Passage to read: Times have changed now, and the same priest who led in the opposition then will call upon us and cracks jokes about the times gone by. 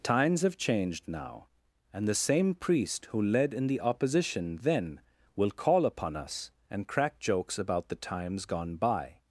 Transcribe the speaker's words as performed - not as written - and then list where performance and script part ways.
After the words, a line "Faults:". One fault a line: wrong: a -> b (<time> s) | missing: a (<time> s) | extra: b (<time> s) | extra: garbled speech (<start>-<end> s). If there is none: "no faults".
Times have changed now, and the same priest who led in the opposition then will call upon us and crack jokes about the times gone by.
Faults:
wrong: cracks -> crack (6.9 s)